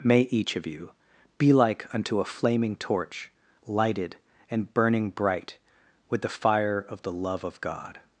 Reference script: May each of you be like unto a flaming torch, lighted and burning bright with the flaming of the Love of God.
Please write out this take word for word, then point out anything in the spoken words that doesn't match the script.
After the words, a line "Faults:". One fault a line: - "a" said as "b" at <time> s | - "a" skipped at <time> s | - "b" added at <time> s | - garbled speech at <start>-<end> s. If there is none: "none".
May each of you be like unto a flaming torch, lighted and burning bright with the fire of the Love of God.
Faults:
- "flaming" said as "fire" at 6.3 s